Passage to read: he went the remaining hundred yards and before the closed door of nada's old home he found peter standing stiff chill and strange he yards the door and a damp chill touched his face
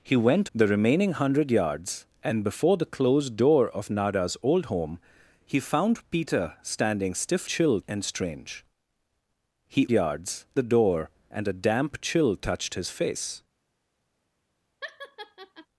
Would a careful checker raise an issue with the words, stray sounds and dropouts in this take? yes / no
yes